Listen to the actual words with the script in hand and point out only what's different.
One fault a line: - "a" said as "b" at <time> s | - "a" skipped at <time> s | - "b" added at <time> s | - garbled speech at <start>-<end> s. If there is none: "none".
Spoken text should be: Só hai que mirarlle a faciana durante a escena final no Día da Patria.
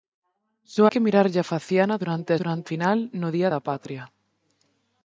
- "hai" skipped at 0.8 s
- "escena" said as "durante" at 2.4 s